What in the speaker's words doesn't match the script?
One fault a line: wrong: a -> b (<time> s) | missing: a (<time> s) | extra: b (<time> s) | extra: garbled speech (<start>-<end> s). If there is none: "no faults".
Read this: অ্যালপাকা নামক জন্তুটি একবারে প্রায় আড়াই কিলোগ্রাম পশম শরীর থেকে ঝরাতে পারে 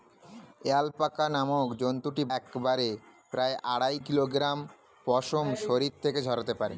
no faults